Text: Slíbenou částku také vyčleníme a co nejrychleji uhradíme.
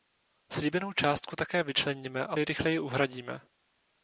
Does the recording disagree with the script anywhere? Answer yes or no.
yes